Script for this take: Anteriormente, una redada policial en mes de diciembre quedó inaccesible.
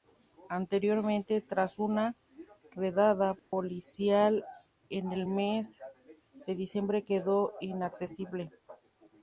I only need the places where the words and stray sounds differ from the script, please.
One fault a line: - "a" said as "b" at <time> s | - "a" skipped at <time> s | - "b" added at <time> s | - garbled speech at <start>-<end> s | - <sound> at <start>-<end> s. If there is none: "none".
- "tras" added at 1.4 s
- dropout at 3.4-3.5 s
- "el" added at 5.1 s